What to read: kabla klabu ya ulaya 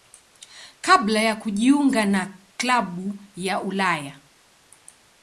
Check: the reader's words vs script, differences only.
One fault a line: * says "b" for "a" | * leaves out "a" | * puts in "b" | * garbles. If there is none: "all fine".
* puts in "ya kujiunga na"